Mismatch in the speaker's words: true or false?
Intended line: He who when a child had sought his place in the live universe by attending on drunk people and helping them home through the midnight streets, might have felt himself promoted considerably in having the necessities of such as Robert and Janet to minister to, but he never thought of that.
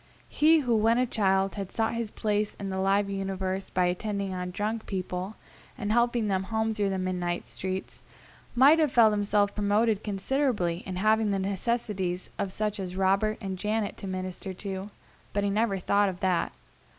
false